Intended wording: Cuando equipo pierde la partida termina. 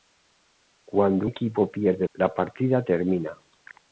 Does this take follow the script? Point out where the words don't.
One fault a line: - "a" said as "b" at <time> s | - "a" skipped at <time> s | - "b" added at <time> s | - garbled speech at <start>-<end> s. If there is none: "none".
none